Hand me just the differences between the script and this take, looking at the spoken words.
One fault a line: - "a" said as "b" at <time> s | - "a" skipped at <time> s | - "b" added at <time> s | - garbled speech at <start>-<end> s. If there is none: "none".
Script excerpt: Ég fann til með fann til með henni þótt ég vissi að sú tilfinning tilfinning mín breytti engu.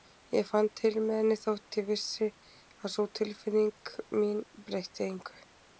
- "fann til með" skipped at 1.2 s
- "tilfinning" skipped at 4.0 s